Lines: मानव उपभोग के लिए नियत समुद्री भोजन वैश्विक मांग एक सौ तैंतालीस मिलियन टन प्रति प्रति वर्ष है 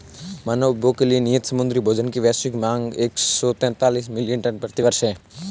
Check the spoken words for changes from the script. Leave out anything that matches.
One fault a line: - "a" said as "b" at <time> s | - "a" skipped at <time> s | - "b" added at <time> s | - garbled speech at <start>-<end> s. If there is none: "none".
- "की" added at 2.1 s
- "प्रति" skipped at 4.8 s